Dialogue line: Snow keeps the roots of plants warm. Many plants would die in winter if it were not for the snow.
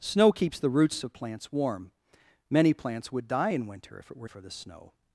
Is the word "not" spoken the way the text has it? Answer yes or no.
no